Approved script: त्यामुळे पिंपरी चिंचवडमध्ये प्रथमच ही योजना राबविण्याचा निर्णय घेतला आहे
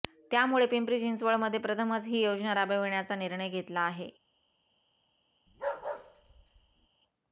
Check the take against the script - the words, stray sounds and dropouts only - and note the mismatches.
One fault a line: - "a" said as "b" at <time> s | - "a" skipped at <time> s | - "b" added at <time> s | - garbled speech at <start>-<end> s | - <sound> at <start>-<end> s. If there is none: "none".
- bark at 5.5-6.9 s